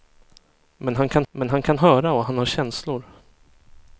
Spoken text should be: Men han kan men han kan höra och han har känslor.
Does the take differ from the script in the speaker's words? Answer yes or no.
no